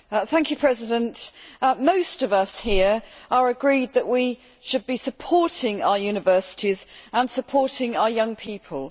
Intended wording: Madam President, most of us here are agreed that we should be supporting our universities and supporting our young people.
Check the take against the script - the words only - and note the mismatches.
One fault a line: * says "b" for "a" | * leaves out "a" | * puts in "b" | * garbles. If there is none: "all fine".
all fine